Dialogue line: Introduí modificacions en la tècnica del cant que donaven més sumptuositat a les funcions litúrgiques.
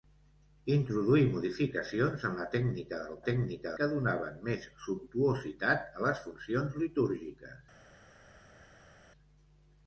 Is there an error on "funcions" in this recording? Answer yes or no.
no